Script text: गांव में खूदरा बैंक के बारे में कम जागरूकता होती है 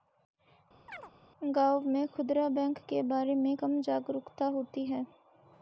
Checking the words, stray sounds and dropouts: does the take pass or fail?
fail